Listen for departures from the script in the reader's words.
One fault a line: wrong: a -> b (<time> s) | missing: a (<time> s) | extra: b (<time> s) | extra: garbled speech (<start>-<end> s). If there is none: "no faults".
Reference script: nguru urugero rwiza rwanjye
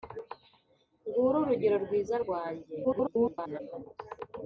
extra: garbled speech (2.8-3.6 s)